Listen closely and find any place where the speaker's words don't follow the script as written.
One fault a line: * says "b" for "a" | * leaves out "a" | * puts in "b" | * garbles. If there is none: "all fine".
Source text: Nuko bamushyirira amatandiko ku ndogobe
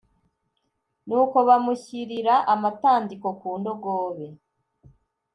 all fine